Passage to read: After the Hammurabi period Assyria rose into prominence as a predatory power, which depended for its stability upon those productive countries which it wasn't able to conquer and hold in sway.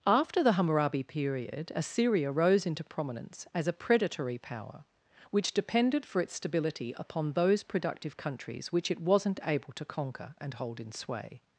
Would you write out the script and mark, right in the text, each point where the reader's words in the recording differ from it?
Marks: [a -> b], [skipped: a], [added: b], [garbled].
After the Hammurabi period Assyria rose into prominence as a predatory power, which depended for its stability upon those productive countries which it wasn't able to conquer and hold in sway.